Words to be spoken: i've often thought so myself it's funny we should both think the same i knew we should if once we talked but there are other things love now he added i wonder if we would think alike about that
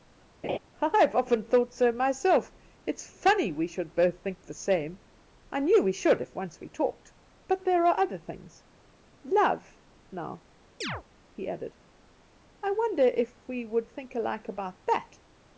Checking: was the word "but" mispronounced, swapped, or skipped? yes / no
no